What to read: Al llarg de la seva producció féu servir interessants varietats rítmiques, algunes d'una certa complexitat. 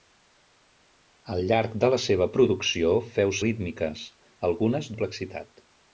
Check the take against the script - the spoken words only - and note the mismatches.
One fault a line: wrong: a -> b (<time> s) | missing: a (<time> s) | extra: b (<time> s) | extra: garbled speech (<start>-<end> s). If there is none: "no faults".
missing: servir interessants varietats (3.4 s)
missing: d'una certa (4.9 s)